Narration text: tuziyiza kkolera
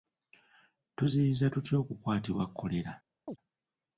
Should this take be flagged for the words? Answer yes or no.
yes